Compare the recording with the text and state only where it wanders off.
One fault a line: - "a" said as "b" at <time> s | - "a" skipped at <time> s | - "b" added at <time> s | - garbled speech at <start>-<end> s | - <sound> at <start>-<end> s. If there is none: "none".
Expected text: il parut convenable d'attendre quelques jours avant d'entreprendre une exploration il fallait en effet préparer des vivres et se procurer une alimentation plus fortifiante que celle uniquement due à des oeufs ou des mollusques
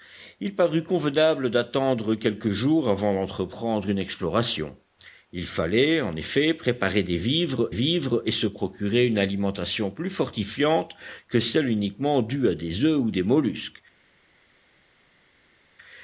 - "vivres" added at 7.7 s